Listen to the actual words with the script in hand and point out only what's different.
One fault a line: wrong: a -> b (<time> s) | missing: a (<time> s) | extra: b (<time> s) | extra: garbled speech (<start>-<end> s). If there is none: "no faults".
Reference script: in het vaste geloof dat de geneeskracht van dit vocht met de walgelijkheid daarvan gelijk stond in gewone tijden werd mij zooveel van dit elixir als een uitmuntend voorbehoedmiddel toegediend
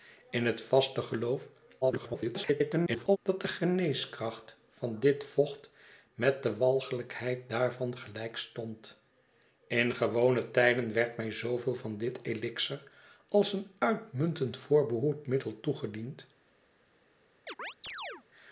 extra: garbled speech (1.8-3.2 s)